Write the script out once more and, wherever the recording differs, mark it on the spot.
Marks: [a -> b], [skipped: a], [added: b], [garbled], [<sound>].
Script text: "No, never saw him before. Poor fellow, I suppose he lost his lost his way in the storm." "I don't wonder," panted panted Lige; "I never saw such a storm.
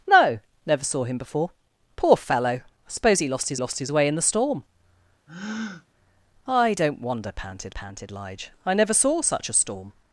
"No, never saw him before. Poor fellow, I suppose he lost his lost his way in the storm." [breath] "I don't wonder," panted panted Lige; "I never saw such a storm.